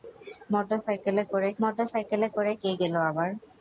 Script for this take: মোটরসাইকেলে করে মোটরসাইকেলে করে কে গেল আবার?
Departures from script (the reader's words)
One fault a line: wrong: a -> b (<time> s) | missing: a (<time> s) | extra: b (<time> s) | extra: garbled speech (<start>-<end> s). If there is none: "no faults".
no faults